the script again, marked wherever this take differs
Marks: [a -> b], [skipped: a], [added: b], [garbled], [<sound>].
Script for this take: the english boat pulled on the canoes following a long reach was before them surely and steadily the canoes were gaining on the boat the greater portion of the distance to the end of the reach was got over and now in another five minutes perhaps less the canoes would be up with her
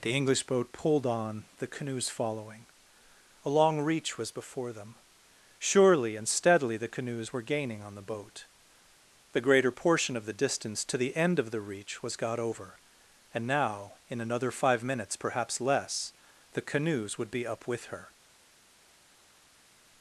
the english boat pulled on the canoes following a long reach was before them surely and steadily the canoes were gaining on the boat the greater portion of the distance to the end of the reach was got over and now in another five minutes perhaps less the canoes would be up with her